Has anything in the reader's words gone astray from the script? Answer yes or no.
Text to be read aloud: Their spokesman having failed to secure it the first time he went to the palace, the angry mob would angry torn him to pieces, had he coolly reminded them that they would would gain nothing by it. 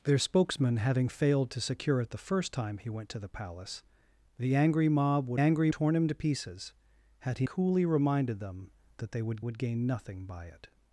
no